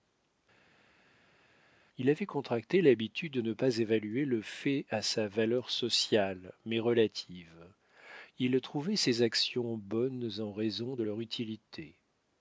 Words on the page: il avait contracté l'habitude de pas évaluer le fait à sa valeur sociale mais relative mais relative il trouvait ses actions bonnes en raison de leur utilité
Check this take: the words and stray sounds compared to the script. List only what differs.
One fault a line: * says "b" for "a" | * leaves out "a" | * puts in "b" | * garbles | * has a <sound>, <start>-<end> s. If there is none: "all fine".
* puts in "ne"
* leaves out "mais relative"